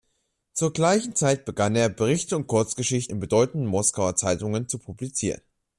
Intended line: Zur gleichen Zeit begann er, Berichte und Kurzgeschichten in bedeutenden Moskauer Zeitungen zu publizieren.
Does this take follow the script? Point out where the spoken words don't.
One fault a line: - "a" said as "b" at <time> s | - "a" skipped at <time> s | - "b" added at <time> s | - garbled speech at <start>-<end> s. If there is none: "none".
none